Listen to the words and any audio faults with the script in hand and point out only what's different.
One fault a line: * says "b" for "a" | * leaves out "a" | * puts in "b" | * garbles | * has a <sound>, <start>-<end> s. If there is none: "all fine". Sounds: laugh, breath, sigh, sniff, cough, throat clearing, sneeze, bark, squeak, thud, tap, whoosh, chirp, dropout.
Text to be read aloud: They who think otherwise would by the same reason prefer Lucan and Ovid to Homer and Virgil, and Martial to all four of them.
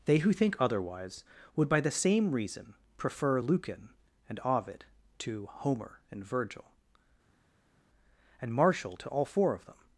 all fine